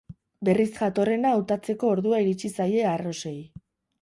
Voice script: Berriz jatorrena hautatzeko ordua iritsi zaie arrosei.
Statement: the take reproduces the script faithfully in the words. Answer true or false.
true